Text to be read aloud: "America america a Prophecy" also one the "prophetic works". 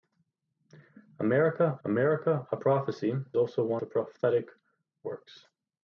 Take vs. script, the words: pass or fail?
pass